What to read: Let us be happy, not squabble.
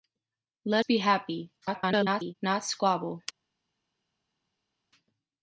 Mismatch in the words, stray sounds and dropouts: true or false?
true